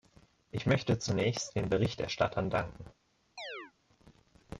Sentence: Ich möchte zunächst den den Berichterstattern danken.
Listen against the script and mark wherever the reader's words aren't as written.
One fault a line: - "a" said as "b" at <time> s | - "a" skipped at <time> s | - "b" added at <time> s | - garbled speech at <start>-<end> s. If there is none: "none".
- "den" skipped at 1.7 s